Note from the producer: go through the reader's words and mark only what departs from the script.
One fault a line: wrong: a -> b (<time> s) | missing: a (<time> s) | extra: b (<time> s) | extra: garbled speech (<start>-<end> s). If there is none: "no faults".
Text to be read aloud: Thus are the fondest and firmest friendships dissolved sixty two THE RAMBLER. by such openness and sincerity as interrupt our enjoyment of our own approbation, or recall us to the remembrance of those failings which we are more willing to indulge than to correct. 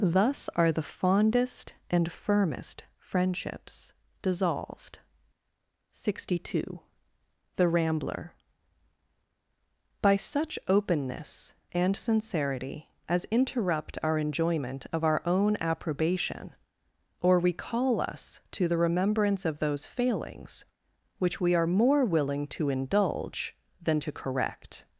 no faults